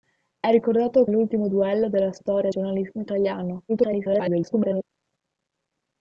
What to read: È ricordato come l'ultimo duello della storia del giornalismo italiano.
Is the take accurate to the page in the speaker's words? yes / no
no